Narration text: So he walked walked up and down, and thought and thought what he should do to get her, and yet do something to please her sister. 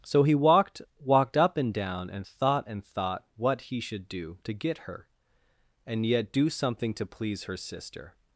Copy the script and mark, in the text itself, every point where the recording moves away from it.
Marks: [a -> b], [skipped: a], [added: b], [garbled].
So he walked walked up and down, and thought and thought what he should do to get her, and yet do something to please her sister.